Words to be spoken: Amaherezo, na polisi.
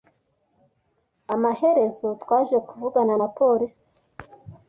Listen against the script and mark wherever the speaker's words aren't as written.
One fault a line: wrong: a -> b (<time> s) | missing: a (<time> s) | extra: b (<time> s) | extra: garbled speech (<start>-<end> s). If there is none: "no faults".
extra: twaje kuvugana (2.2 s)